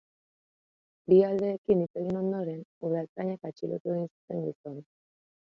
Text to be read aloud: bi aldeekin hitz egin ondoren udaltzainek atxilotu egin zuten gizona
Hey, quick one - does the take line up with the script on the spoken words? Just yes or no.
yes